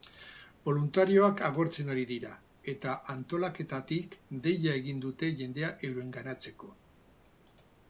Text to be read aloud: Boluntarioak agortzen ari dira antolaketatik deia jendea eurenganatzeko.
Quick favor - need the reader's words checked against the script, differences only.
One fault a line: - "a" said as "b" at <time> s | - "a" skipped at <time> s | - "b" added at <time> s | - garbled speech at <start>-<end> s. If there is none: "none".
- "eta" added at 2.7 s
- "egin dute" added at 4.8 s